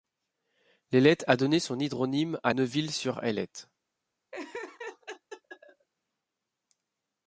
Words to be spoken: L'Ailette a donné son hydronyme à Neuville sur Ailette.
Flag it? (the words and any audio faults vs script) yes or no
yes